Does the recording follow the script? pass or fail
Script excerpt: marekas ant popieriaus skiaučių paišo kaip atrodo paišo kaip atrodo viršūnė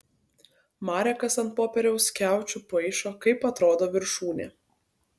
fail